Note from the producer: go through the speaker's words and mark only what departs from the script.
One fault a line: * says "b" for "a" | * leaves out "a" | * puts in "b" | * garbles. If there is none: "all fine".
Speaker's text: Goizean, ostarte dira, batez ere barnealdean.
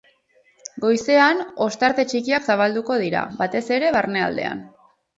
* puts in "txikiak zabalduko"